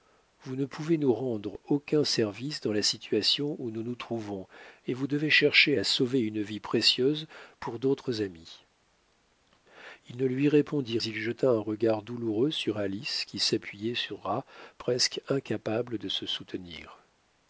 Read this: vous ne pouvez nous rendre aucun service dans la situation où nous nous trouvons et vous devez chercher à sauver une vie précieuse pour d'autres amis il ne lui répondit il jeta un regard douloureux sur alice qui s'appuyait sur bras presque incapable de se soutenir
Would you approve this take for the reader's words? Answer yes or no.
yes